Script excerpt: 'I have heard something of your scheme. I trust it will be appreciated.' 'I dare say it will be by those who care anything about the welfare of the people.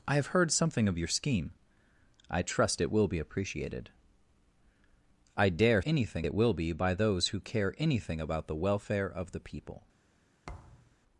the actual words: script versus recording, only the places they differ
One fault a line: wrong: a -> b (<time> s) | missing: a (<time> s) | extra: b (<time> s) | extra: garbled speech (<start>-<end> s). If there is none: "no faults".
wrong: say -> anything (5.8 s)